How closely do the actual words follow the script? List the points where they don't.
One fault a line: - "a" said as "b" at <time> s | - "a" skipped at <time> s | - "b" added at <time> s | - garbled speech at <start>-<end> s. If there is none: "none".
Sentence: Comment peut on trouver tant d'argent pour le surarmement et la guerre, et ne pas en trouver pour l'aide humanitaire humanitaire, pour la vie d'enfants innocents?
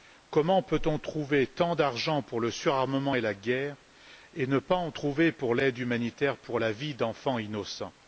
- "humanitaire" skipped at 6.4 s